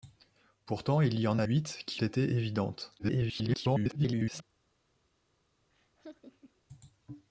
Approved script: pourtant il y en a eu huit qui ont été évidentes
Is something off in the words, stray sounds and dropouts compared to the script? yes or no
yes